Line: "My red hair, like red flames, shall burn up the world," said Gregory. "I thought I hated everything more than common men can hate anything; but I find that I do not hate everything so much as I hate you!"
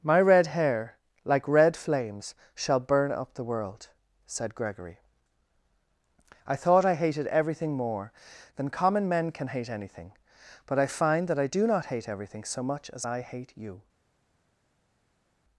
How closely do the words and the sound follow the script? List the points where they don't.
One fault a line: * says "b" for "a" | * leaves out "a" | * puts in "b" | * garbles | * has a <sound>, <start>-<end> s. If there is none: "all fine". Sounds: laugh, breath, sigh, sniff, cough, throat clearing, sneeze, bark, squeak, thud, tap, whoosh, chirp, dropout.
all fine